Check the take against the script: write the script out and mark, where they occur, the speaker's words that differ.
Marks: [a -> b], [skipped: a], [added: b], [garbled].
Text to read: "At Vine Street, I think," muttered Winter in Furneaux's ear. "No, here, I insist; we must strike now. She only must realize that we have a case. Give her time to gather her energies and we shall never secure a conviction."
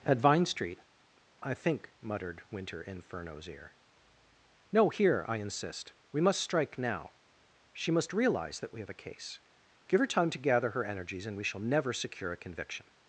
"At Vine Street, I think," muttered Winter in Furneaux's ear. "No, here, I insist; we must strike now. She [skipped: only] must realize that we have a case. Give her time to gather her energies and we shall never secure a conviction."